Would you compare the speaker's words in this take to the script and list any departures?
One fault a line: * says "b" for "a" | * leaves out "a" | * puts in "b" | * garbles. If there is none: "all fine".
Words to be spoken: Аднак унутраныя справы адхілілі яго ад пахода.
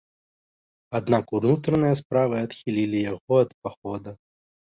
all fine